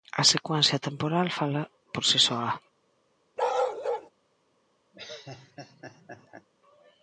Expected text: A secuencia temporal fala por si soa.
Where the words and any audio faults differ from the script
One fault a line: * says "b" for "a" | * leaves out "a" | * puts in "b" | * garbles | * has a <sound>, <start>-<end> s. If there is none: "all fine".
* has a bark, 3.4-4.1 s
* has a laugh, 4.9-6.5 s